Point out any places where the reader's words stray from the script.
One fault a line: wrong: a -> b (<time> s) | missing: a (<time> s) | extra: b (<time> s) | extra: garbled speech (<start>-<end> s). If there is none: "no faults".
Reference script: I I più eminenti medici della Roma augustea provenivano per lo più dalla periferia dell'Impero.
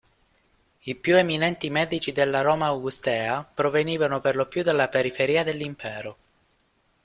missing: I (0.9 s)